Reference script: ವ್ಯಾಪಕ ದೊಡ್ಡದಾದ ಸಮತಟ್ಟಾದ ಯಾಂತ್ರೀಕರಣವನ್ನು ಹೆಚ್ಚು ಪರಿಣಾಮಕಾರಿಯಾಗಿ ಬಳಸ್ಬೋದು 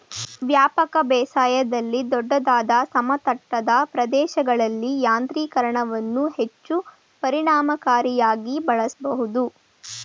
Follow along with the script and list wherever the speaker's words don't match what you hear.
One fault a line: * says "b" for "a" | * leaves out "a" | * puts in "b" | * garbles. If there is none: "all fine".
* puts in "ಬೇಸಾಯದಲ್ಲಿ"
* puts in "ಪ್ರದೇಶಗಳಲ್ಲಿ"